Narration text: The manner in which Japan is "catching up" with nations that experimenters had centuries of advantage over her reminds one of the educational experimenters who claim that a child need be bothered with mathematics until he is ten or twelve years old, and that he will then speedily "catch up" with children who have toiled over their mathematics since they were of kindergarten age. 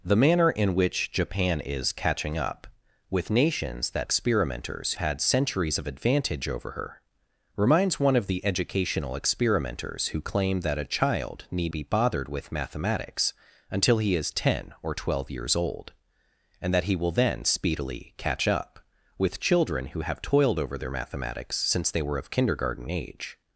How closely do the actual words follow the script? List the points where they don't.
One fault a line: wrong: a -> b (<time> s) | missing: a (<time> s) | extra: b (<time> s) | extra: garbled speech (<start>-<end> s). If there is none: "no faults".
no faults